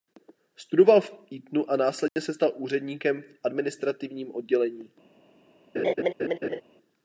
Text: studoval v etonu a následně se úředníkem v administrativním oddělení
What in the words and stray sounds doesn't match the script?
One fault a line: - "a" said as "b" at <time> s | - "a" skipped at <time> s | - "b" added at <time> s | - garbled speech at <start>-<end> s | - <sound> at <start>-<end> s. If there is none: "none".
- dropout at 2.1-2.2 s
- "stal" added at 2.3 s
- laugh at 5.7-6.6 s